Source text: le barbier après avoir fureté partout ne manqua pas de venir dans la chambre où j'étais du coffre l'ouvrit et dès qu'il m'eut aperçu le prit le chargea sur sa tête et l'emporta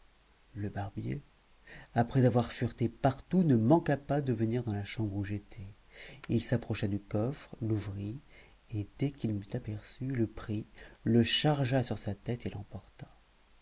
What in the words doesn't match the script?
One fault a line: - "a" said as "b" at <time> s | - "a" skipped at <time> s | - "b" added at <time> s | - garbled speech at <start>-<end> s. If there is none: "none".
- "il s'approcha" added at 6.3 s